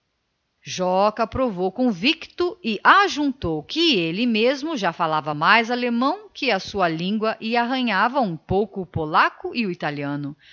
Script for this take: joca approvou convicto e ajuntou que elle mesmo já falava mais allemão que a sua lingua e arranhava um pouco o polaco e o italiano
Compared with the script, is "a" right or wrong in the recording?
right